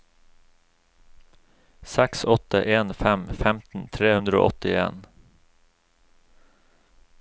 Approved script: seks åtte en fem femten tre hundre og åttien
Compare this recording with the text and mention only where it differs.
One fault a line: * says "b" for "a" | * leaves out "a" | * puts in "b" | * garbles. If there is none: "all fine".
all fine